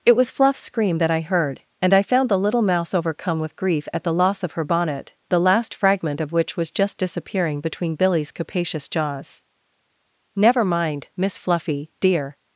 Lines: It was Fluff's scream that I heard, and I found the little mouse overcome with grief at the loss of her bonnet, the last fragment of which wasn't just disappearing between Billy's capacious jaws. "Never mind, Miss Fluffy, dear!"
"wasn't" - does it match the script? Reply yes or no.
no